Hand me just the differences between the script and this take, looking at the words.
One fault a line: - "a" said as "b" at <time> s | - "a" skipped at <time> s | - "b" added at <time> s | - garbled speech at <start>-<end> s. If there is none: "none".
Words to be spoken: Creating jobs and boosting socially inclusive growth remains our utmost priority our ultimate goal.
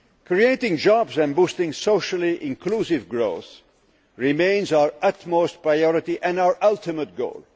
- "and" added at 6.2 s